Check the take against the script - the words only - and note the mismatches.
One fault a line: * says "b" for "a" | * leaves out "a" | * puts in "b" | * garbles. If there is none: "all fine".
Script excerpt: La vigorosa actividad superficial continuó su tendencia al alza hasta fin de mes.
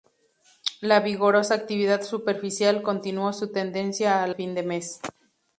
* leaves out "alza hasta"